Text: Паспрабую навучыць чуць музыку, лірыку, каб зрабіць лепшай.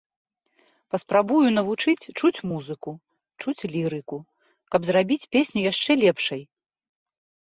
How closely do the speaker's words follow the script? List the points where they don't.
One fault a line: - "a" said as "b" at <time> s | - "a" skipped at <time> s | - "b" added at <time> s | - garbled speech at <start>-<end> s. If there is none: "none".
- "чуць" added at 3.4 s
- "песню яшчэ" added at 5.4 s